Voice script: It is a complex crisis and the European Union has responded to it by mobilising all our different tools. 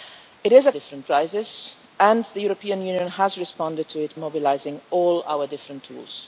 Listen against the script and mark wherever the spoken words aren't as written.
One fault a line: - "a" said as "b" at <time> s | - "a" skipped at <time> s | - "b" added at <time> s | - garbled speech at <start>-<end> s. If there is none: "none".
- "complex" said as "different" at 0.7 s
- "by" skipped at 4.2 s